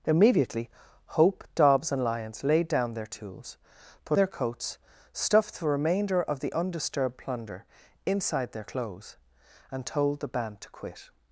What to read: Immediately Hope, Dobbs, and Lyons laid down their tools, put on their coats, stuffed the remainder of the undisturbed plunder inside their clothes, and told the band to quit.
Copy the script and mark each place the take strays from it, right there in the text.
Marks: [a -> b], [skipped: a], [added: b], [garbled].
Immediately Hope, Dobbs, and Lyons laid down their tools, put [skipped: on] their coats, stuffed the remainder of the undisturbed plunder inside their clothes, and told the band to quit.